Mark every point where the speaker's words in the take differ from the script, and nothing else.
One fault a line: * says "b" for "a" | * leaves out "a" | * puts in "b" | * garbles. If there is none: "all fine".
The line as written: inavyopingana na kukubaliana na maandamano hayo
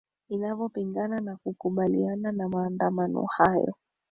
all fine